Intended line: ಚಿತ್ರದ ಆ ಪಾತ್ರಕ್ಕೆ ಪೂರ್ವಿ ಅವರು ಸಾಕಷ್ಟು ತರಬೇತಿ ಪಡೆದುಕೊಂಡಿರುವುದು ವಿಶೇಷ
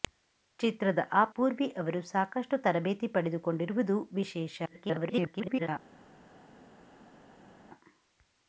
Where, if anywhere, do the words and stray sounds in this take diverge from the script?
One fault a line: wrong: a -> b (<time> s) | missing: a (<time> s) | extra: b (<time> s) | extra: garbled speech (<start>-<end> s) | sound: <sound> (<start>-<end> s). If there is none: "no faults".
missing: ಪಾತ್ರಕ್ಕೆ (1.2 s)
extra: garbled speech (4.6-5.7 s)